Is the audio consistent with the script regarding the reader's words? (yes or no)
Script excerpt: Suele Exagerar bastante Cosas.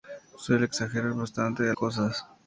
yes